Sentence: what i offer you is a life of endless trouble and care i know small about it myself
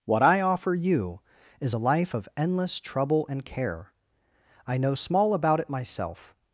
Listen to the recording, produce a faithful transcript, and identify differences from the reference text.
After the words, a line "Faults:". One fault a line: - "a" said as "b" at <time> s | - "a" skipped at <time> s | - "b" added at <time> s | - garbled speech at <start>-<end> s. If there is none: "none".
what i offer you is a life of endless trouble and care i know small about it myself
Faults:
none